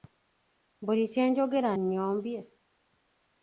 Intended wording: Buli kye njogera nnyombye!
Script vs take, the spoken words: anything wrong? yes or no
no